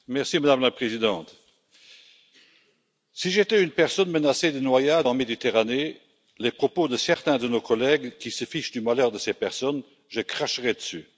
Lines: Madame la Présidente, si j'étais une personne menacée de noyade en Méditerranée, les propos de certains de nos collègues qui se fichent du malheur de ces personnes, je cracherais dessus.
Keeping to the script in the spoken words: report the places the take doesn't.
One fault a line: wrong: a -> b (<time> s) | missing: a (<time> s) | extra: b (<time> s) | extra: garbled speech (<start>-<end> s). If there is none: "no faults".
no faults